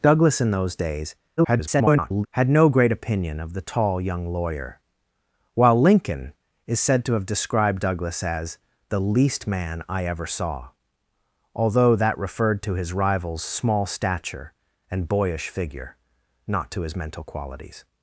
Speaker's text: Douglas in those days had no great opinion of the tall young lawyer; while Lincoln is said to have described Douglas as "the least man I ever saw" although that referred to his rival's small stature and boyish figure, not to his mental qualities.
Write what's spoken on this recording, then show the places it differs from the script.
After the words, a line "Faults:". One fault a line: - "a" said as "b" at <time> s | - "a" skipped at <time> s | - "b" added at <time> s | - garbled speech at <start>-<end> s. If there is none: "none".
Douglas in those days [garbled] had no great opinion of the tall young lawyer; while Lincoln is said to have described Douglas as "the least man I ever saw" although that referred to his rival's small stature and boyish figure, not to his mental qualities.
Faults:
- garbled speech at 1.4-2.3 s